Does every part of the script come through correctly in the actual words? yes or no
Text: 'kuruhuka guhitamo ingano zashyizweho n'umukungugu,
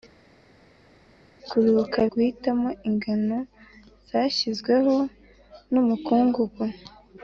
yes